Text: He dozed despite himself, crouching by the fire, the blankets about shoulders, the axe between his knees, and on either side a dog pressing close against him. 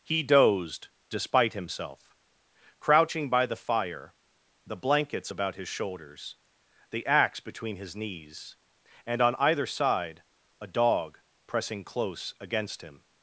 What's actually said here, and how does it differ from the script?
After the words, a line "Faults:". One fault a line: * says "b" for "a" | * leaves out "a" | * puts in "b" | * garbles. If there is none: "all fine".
He dozed despite himself, crouching by the fire, the blankets about his shoulders, the axe between his knees, and on either side a dog pressing close against him.
Faults:
* puts in "his"